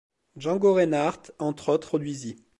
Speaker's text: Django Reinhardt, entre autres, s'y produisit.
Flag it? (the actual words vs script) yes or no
yes